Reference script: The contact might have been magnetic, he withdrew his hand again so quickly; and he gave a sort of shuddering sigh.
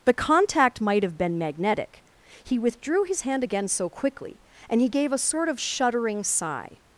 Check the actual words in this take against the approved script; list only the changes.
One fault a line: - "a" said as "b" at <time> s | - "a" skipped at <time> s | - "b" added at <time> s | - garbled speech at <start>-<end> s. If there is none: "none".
none